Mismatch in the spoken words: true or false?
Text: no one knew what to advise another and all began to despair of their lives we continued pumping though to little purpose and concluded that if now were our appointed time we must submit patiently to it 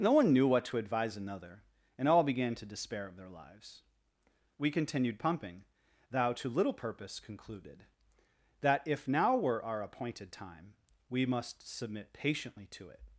true